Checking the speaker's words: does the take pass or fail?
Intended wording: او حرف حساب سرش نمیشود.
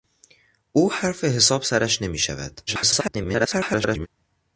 fail